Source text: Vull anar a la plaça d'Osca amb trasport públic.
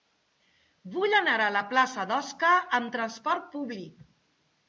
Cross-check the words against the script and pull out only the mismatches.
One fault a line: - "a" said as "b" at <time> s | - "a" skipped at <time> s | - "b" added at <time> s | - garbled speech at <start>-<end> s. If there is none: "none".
none